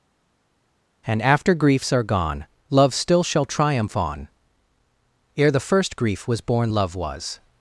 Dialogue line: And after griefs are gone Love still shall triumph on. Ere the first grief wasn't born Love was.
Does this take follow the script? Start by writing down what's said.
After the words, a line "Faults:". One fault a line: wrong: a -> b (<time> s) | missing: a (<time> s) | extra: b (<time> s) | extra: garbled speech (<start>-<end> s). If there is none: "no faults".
And after griefs are gone Love still shall triumph on. Ere the first grief was born Love was.
Faults:
wrong: wasn't -> was (6.3 s)